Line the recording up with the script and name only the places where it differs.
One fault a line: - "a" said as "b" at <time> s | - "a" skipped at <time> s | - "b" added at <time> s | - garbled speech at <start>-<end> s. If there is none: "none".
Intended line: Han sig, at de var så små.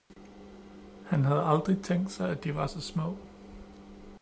- "havde aldrig tænkt" added at 1.2 s